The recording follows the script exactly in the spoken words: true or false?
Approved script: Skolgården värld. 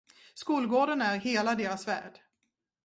false